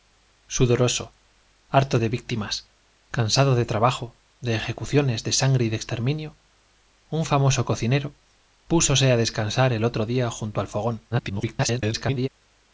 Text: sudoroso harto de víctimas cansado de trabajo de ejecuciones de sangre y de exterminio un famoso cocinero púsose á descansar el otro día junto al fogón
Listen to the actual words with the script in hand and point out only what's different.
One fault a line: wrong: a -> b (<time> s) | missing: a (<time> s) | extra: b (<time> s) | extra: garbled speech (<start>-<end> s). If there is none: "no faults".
extra: garbled speech (11.1-12.3 s)